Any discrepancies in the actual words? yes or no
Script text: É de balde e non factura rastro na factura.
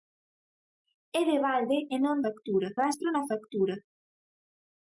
no